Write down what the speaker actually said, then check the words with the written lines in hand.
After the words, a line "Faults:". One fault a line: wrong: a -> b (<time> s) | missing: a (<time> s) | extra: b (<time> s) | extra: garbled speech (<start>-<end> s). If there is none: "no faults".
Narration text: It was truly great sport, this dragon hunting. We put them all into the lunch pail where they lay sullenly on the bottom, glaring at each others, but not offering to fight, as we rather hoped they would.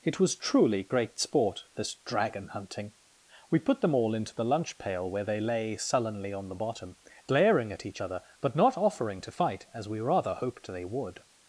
It was truly great sport, this dragon hunting. We put them all into the lunch pail where they lay sullenly on the bottom, glaring at each other, but not offering to fight, as we rather hoped they would.
Faults:
wrong: others -> other (8.0 s)